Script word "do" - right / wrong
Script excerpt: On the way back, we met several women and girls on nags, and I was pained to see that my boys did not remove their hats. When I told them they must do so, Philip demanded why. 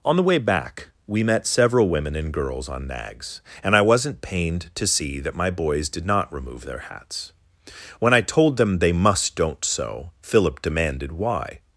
wrong